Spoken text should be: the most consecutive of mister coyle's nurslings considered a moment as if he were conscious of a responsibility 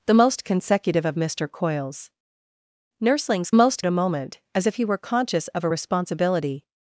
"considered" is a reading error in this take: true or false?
true